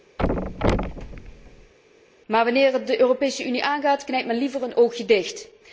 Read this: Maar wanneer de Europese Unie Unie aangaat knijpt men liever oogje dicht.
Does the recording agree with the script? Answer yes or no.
no